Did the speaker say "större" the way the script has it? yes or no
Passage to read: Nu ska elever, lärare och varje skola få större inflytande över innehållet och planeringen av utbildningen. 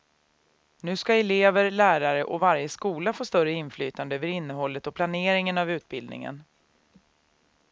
yes